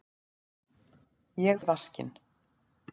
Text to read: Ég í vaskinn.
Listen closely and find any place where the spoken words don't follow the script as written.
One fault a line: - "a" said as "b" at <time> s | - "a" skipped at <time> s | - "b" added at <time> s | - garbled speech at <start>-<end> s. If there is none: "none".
none